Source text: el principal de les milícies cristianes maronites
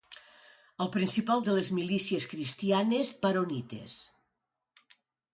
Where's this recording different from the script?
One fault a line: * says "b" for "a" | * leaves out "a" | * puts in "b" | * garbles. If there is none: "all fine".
all fine